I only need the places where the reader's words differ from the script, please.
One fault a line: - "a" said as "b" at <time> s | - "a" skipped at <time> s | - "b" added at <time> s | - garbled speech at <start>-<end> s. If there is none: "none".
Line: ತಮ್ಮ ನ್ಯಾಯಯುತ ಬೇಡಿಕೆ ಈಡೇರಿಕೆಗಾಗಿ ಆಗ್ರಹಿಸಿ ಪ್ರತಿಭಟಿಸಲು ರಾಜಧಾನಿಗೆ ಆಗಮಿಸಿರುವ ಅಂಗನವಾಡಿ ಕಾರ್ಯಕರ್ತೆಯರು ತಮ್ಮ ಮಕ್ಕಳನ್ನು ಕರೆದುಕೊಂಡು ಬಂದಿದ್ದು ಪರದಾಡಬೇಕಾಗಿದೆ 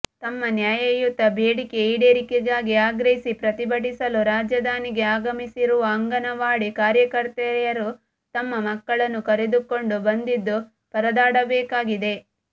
none